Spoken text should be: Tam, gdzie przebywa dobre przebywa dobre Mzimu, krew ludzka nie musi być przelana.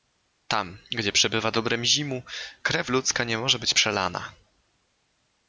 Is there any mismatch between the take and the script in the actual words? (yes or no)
yes